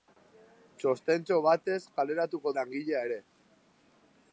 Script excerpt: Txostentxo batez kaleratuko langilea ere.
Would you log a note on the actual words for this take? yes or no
no